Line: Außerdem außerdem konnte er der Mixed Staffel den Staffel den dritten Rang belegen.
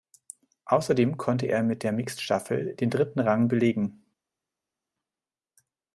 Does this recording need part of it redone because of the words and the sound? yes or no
yes